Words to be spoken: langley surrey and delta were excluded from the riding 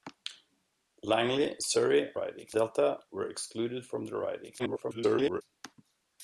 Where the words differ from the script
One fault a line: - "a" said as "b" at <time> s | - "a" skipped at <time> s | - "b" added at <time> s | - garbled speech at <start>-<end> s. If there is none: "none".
- "and" said as "riding" at 2.1 s
- garbled speech at 4.6-5.4 s